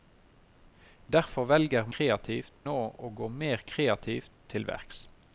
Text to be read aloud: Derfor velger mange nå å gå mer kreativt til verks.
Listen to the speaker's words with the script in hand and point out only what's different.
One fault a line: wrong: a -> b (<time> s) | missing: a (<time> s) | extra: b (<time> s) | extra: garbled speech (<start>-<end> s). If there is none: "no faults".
wrong: mange -> kreativt (1.9 s)